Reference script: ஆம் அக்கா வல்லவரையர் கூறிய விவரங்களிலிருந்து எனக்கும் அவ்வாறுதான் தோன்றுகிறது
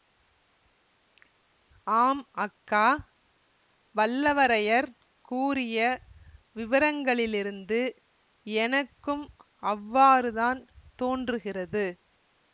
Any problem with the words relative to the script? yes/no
no